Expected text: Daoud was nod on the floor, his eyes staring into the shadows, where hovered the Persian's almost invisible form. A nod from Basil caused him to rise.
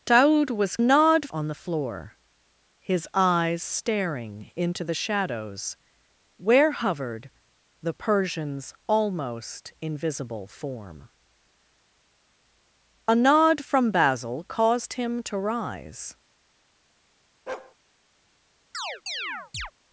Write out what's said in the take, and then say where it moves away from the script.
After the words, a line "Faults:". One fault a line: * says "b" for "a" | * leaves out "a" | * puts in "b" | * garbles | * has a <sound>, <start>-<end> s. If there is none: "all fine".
Daoud was nod on the floor, his eyes staring into the shadows, where hovered the Persian's almost invisible form. A nod from Basil caused him to rise.
Faults:
* has a bark, 17.5-17.8 s
* has a chirp, 18.7-19.7 s